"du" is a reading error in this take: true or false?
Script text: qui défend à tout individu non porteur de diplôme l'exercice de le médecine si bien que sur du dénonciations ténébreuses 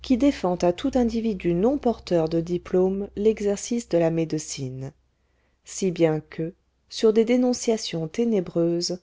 true